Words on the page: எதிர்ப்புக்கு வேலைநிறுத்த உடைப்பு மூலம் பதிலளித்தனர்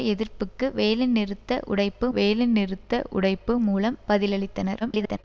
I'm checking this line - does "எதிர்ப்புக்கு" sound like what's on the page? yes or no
yes